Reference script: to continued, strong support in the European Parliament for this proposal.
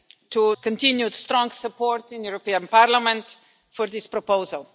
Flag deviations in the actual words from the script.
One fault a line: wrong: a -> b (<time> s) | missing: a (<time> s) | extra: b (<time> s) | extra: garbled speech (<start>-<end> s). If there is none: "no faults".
no faults